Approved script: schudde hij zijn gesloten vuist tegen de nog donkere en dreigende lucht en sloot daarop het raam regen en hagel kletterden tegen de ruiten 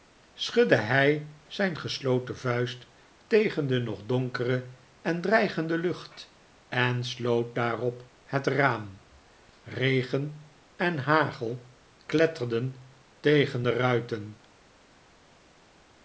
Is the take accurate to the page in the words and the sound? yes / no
yes